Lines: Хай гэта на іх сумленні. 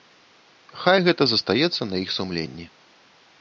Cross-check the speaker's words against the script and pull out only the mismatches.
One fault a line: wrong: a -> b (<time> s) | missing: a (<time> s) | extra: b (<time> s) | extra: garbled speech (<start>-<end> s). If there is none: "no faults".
extra: застаецца (1.3 s)